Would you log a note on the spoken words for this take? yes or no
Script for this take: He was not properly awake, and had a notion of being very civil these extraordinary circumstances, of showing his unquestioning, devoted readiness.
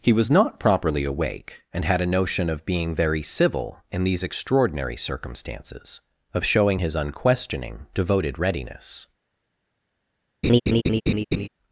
yes